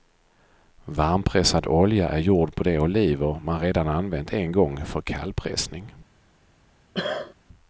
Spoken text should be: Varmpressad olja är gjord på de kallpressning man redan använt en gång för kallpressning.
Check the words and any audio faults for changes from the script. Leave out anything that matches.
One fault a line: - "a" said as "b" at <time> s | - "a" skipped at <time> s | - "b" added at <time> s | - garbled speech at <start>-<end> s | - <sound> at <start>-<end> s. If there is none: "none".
- "kallpressning" said as "oliver" at 2.8 s
- cough at 6.9-7.3 s